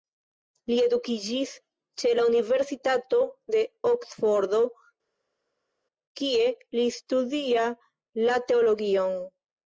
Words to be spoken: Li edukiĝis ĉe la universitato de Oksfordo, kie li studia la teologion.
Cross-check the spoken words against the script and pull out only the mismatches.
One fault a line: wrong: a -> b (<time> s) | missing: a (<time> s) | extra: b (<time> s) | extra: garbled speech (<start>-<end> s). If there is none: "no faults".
no faults